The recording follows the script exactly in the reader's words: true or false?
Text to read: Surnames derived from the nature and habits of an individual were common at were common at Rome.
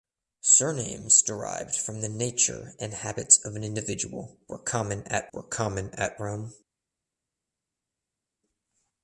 true